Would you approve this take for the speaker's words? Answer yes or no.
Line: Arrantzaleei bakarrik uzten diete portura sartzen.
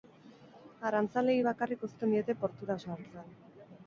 yes